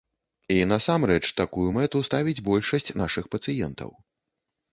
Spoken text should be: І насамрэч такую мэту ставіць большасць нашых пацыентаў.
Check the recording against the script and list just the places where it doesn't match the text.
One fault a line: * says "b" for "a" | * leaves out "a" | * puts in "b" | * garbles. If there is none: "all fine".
all fine